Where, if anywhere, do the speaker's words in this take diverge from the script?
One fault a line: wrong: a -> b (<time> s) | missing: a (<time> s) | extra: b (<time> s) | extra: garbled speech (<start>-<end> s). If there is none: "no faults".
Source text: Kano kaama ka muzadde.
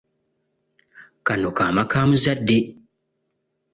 no faults